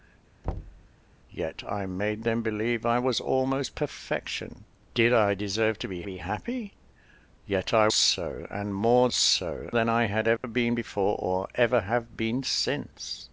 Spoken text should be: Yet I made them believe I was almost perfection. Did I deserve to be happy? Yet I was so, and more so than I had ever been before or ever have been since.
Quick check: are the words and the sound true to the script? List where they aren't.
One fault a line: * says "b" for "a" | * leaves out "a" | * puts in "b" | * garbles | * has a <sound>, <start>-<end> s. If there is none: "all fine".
* has a thud, 0.4-0.9 s
* puts in "be"
* leaves out "was"
* has a dropout, 10.4-10.4 s